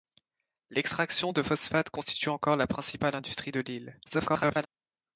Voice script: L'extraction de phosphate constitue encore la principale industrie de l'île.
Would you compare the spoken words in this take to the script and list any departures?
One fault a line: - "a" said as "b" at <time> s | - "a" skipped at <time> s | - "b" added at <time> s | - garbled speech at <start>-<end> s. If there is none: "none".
- garbled speech at 4.1-4.7 s